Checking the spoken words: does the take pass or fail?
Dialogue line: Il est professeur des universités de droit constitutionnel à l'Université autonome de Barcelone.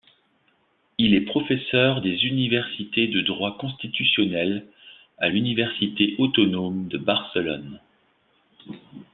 pass